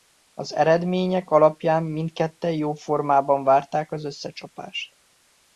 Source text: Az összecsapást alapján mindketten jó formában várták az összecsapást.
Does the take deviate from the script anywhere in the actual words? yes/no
yes